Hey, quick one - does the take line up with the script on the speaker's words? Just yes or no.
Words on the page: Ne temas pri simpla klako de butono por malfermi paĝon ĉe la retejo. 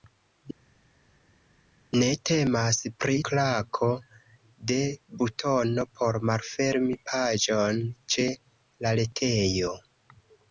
no